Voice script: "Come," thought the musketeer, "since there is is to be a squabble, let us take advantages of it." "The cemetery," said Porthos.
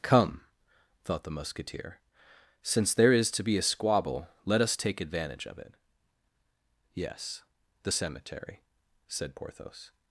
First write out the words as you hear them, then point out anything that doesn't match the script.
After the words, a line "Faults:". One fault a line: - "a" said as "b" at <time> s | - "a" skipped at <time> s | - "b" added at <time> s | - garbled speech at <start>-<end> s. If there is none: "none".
"Come," thought the musketeer, "since there is to be a squabble, let us take advantage of it." "Yes, the cemetery," said Porthos.
Faults:
- "is" skipped at 3.3 s
- "advantages" said as "advantage" at 5.0 s
- "Yes" added at 6.9 s